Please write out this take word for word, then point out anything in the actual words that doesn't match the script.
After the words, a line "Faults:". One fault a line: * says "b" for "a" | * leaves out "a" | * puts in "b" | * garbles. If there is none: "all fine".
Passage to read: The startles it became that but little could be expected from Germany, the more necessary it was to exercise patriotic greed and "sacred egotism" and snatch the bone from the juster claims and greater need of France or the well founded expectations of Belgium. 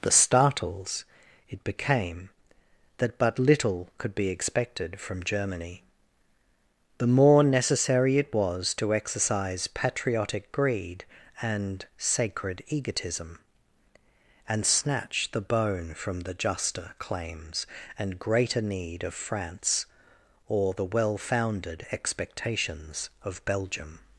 The startles it became that but little could be expected from Germany, the more necessary it was to exercise patriotic greed and "sacred egotism" and snatch the bone from the juster claims and greater need of France or the well founded expectations of Belgium.
Faults:
all fine